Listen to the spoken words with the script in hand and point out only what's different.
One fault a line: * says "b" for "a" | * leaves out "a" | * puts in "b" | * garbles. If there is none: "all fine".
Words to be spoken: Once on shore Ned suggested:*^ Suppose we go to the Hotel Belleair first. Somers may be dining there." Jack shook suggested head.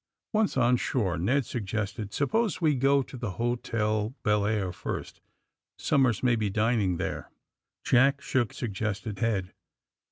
all fine